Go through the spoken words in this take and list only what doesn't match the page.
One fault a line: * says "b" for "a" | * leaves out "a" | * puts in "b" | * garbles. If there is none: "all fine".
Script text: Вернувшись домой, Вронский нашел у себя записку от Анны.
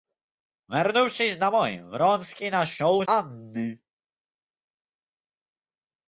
* leaves out "себя записку от"